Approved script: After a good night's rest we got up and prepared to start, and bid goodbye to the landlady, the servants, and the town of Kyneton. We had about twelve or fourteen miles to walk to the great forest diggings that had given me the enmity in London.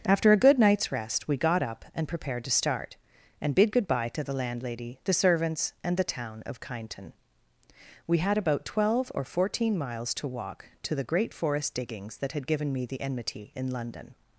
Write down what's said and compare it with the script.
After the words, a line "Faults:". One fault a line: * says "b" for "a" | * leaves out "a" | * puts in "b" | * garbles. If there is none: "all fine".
After a good night's rest we got up and prepared to start, and bid goodbye to the landlady, the servants, and the town of Kyneton. We had about twelve or fourteen miles to walk to the great forest diggings that had given me the enmity in London.
Faults:
all fine